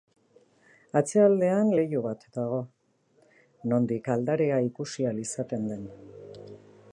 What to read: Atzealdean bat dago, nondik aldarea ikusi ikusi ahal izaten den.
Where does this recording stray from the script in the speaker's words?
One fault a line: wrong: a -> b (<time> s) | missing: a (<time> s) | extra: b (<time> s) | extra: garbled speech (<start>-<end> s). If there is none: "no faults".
extra: leiho (1.8 s)
missing: ikusi (5.1 s)